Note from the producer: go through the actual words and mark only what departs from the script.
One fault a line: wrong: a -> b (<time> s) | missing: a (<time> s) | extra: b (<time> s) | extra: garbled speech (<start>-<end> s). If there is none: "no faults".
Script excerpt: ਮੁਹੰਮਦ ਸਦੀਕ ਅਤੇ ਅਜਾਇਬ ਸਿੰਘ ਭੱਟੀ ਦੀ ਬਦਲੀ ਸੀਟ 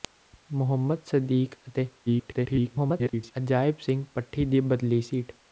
extra: garbled speech (2.1-3.3 s)